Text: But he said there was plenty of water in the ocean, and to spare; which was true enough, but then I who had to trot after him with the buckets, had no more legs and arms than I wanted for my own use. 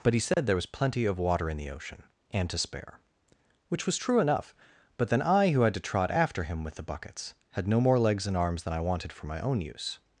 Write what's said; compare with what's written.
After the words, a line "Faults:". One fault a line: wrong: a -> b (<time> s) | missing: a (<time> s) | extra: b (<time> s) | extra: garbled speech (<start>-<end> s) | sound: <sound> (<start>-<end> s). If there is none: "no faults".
But he said there was plenty of water in the ocean, and to spare; which was true enough, but then I who had to trot after him with the buckets, had no more legs and arms than I wanted for my own use.
Faults:
sound: dropout (0.3-0.4 s)